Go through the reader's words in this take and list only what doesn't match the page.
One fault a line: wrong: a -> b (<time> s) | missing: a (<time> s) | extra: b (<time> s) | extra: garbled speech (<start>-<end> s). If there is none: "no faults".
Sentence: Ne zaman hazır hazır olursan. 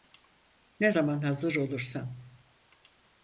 missing: hazır (1.6 s)